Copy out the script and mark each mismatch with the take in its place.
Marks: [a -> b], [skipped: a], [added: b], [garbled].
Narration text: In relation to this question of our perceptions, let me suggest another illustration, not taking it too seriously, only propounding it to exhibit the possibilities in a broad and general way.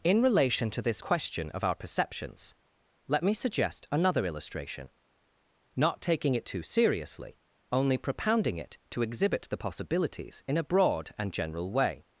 In relation to this question of our perceptions, let me suggest another illustration, not taking it too seriously, only propounding it to exhibit the possibilities in a broad and general way.